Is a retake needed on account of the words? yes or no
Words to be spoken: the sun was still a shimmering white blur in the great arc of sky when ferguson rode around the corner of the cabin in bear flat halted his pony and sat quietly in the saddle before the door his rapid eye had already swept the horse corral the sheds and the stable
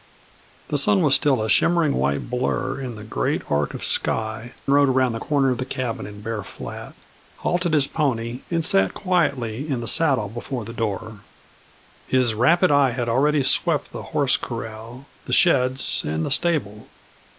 yes